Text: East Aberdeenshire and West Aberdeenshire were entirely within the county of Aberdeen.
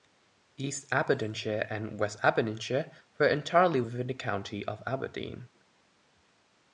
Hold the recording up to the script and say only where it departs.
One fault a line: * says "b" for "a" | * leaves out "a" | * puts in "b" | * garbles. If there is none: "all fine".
all fine